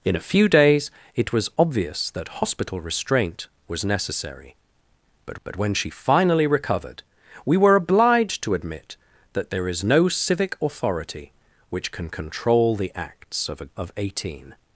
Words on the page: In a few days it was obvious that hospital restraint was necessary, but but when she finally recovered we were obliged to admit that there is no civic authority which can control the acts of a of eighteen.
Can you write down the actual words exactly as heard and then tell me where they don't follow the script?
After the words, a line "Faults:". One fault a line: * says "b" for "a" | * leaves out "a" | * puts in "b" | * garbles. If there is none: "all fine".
In a few days it was obvious that hospital restraint was necessary, but but when she finally recovered we were obliged to admit that there is no civic authority which can control the acts of a of eighteen.
Faults:
all fine